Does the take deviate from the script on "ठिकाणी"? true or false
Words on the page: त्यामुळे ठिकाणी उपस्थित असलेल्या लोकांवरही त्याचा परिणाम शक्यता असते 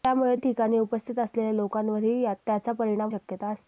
false